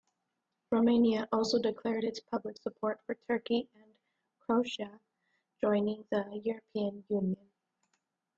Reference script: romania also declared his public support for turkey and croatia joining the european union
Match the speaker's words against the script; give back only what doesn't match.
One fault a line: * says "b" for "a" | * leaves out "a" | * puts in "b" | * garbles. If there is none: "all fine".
* says "its" for "his"